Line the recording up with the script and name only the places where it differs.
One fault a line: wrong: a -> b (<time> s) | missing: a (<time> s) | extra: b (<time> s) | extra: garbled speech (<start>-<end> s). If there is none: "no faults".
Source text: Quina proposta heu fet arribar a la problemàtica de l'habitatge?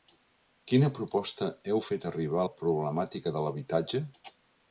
no faults